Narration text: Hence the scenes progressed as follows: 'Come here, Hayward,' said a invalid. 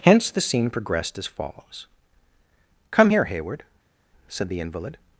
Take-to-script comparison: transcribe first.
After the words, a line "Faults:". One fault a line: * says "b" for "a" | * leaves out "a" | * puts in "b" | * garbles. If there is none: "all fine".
Hence the scene progressed as follows: 'Come here, Hayward,' said the invalid.
Faults:
* says "scene" for "scenes"
* says "the" for "a"